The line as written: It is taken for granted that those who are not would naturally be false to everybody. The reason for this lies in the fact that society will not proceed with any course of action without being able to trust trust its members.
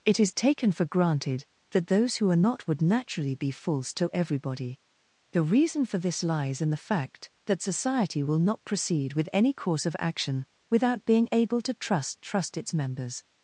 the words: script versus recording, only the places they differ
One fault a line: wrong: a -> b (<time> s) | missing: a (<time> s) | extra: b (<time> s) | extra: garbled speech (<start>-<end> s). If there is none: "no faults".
no faults